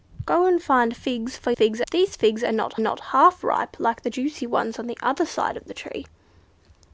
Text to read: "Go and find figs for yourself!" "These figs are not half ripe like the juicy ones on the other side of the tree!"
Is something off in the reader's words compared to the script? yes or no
yes